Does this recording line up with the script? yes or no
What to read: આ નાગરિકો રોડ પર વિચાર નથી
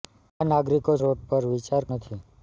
yes